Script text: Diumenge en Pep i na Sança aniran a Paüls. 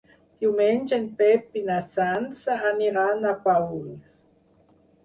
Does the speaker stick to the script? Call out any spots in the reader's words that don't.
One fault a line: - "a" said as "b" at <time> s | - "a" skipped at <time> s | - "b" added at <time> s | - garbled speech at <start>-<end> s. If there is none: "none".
none